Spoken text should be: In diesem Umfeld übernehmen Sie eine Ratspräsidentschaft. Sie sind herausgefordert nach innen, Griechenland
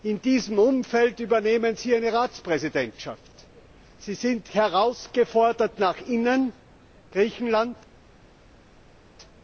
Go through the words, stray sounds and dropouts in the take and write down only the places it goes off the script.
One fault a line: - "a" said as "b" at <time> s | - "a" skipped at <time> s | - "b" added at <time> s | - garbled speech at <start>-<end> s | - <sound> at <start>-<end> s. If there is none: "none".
none